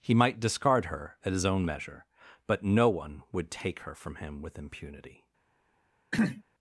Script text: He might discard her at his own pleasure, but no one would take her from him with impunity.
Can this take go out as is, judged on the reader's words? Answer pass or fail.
fail